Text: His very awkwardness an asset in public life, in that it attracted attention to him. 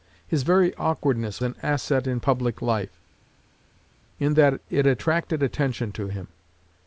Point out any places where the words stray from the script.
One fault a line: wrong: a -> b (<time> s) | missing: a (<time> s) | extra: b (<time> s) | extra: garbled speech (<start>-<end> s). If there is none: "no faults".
no faults